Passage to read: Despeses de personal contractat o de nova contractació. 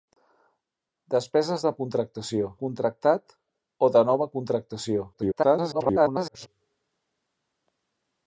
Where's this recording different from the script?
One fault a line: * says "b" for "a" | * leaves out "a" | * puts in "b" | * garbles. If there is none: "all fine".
* says "contractació" for "personal"
* garbles